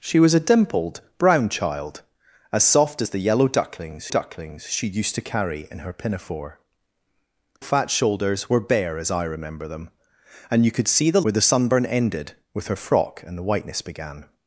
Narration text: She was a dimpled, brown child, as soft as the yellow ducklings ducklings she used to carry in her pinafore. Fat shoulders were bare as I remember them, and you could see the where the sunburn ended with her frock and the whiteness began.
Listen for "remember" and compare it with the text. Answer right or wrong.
right